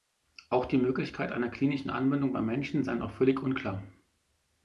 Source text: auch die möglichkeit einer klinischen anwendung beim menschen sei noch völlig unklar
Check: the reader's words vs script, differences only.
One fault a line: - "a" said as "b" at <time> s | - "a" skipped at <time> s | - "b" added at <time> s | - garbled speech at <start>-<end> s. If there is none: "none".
none